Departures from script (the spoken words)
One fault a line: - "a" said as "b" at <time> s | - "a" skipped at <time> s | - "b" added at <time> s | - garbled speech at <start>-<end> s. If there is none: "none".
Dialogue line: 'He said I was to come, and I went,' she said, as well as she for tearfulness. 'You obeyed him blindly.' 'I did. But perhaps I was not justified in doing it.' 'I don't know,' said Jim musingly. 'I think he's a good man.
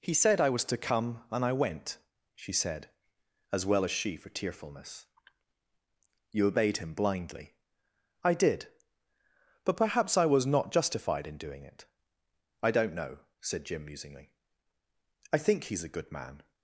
none